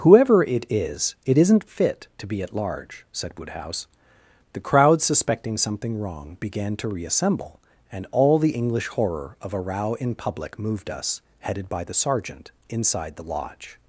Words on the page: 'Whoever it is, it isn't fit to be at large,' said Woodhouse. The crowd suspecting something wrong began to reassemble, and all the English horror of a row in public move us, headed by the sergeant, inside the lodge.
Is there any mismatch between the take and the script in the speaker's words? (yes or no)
yes